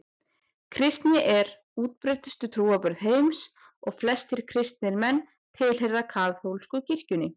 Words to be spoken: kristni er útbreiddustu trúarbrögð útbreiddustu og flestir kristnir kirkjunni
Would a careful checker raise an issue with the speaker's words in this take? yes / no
yes